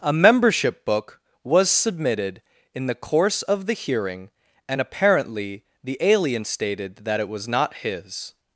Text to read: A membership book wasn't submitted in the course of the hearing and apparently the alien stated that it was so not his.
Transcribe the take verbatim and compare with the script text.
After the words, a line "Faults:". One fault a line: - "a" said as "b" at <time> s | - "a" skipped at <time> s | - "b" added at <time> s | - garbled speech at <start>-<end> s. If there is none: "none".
A membership book was submitted in the course of the hearing and apparently the alien stated that it was not his.
Faults:
- "wasn't" said as "was" at 1.4 s
- "so" skipped at 7.5 s